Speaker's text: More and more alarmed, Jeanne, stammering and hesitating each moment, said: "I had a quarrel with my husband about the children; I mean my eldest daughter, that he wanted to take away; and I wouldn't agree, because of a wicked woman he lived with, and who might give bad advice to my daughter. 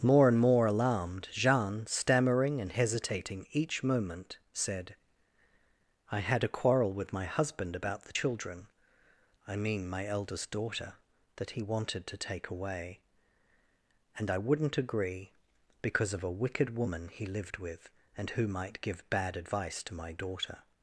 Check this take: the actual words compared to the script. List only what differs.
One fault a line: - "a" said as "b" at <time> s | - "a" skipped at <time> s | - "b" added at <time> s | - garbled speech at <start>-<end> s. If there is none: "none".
none